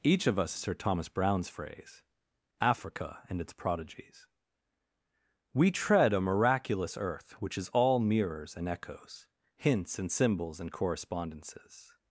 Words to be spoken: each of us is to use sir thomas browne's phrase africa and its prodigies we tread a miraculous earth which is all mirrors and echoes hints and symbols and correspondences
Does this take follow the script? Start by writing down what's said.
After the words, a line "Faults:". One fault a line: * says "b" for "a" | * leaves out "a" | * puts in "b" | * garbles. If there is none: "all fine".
each of us sir thomas browne's phrase africa and its prodigies we tread a miraculous earth which is all mirrors and echoes hints and symbols and correspondences
Faults:
* leaves out "is to use"